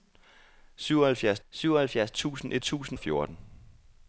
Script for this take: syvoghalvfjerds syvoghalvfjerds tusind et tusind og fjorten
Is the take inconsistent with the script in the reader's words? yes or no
no